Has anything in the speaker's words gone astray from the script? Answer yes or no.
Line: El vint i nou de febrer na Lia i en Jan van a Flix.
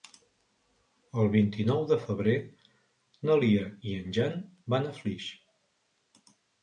no